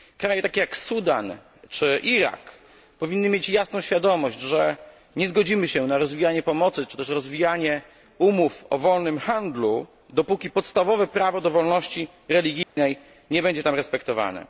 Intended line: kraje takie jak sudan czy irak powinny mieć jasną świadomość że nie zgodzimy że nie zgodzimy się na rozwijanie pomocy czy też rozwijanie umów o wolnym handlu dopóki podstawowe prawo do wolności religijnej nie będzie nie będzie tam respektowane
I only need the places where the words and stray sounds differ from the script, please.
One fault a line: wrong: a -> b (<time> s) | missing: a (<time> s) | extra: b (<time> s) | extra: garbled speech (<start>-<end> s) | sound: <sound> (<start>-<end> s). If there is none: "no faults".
missing: że nie zgodzimy (5.7 s)
sound: dropout (12.6-12.8 s)
missing: nie będzie (13.6 s)